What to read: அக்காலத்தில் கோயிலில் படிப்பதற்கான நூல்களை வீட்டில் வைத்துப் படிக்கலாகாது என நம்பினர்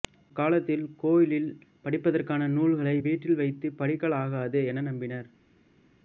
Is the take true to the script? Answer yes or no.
yes